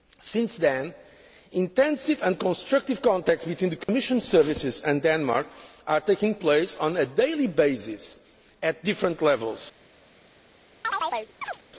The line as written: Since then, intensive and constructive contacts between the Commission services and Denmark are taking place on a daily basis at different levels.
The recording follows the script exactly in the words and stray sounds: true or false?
false